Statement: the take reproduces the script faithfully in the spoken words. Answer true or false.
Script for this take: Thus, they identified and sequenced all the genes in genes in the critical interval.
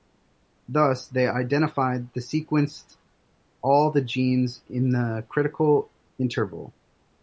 false